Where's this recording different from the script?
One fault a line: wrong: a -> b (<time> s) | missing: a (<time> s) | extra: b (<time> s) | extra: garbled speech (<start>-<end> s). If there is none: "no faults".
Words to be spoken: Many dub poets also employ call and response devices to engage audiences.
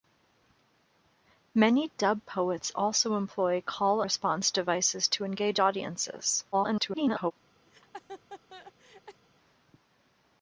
missing: and (4.0 s)
extra: garbled speech (6.5-7.3 s)